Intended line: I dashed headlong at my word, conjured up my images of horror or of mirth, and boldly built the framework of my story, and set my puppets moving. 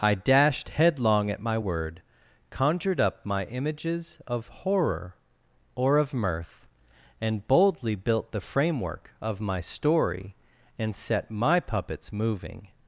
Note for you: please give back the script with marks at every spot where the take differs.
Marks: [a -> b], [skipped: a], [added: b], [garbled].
I dashed headlong at my word, conjured up my images of horror or of mirth, and boldly built the framework of my story, and set my puppets moving.